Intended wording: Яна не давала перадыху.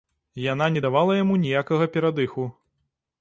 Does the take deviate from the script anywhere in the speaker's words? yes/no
yes